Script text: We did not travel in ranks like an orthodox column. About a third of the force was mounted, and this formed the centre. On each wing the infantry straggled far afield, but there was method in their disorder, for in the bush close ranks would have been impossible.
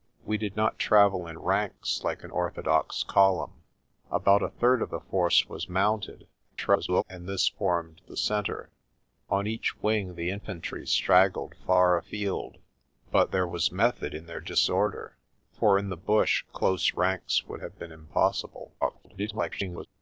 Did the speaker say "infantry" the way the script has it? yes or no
yes